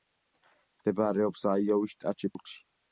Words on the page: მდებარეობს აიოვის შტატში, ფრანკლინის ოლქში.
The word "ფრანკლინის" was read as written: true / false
false